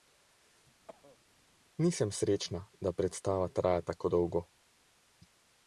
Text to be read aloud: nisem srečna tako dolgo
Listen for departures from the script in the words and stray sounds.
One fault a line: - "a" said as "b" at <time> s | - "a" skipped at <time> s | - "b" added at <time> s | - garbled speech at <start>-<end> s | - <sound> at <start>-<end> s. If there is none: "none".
- cough at 0.9-1.2 s
- "da predstava traja" added at 2.8 s